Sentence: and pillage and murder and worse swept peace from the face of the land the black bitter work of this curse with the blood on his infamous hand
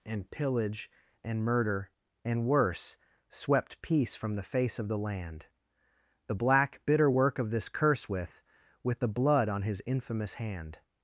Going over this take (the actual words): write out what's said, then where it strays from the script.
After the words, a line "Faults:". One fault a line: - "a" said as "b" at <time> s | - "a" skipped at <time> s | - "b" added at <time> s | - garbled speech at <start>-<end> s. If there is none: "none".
and pillage and murder and worse swept peace from the face of the land the black bitter work of this curse with with the blood on his infamous hand
Faults:
- "with" added at 8.8 s